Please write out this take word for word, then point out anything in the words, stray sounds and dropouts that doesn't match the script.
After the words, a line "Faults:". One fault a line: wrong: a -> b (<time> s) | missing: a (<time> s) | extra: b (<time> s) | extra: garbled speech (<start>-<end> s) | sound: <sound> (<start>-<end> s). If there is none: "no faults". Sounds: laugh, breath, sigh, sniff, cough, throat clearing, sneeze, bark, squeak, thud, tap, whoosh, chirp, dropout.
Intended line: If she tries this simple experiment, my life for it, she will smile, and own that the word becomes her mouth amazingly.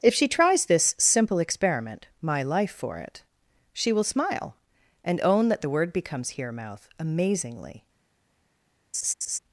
If she tries this simple experiment, my life for it, she will smile, and own that the word becomes here mouth amazingly.
Faults:
wrong: her -> here (6.3 s)
sound: laugh (8.9-9.4 s)